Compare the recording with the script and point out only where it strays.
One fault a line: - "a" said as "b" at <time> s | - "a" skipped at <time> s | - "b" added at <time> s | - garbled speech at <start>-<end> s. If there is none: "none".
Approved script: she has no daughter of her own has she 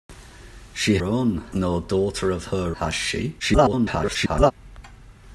- "has" said as "own" at 1.0 s
- "own" skipped at 2.8 s
- garbled speech at 3.4-4.5 s